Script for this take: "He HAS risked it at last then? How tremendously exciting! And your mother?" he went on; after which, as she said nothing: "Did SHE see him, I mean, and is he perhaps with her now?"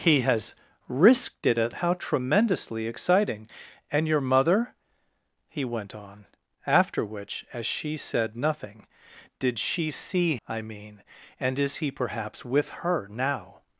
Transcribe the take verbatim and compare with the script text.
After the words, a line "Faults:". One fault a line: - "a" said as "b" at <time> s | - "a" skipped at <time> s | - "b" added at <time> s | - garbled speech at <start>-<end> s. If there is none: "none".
"He HAS risked it at? How tremendously exciting! And your mother?" he went on; after which, as she said nothing: "Did SHE see I mean, and is he perhaps with her now?"
Faults:
- "last then" skipped at 1.8 s
- "him" skipped at 10.4 s